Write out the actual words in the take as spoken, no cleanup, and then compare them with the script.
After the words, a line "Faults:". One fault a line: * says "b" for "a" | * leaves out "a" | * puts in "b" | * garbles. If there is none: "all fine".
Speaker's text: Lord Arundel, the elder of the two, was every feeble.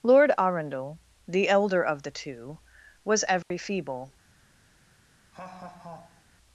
Lord Arundel, the elder of the two, was every feeble.
Faults:
all fine